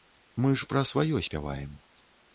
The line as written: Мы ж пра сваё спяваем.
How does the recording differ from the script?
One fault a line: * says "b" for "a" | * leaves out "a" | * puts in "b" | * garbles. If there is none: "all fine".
all fine